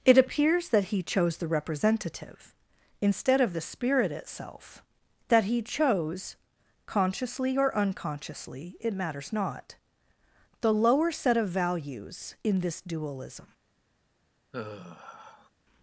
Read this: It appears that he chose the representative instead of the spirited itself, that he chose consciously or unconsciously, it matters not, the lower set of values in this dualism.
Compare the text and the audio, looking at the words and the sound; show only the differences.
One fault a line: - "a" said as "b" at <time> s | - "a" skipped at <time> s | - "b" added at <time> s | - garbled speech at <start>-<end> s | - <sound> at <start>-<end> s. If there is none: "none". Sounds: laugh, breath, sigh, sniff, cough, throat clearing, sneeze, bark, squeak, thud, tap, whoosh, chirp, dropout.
- "spirited" said as "spirit" at 3.6 s
- sigh at 14.5-15.5 s